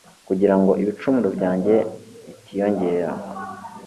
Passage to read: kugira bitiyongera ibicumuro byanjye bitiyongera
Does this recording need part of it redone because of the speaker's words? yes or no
yes